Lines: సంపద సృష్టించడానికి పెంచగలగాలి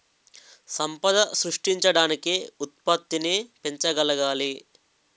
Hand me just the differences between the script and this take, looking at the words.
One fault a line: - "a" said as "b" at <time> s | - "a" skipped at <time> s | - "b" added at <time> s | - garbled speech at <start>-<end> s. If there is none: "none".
- "ఉత్పత్తిని" added at 2.6 s